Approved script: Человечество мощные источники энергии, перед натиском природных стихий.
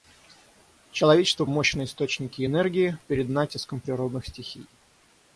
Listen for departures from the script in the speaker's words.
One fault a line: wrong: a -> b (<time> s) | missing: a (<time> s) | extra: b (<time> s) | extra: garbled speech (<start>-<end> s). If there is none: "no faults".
no faults